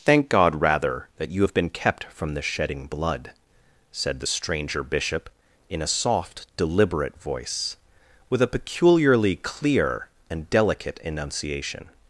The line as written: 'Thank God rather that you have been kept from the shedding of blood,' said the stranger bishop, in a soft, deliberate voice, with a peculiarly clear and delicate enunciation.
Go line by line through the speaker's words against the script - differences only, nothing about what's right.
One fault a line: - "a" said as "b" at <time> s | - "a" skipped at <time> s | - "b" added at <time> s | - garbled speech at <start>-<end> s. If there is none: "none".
- "of" skipped at 2.9 s